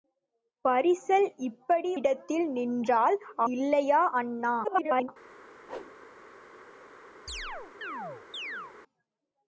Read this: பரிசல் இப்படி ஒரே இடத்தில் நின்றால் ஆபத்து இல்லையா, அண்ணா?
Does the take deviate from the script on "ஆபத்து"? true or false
true